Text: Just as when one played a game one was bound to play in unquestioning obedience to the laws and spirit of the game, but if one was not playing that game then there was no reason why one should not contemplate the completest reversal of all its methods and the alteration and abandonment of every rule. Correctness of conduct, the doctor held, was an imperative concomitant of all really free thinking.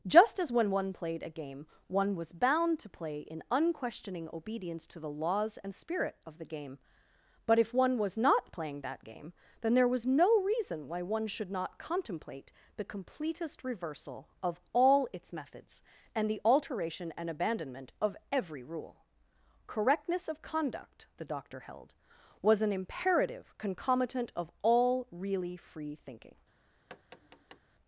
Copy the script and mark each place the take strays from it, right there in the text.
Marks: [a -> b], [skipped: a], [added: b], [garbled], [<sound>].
Just as when one played a game one was bound to play in unquestioning obedience to the laws and spirit of the game, but if one was not playing that game then there was no reason why one should not contemplate the completest reversal of all its methods and the alteration and abandonment of every rule. Correctness of conduct, the doctor held, was an imperative concomitant of all really free thinking. [tap]